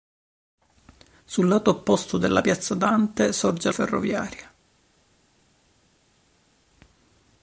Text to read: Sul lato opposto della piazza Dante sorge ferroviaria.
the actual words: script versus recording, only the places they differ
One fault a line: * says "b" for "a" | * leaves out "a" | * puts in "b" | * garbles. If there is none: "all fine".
all fine